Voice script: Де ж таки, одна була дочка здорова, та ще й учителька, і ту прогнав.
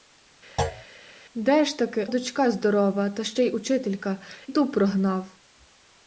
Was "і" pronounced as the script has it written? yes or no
no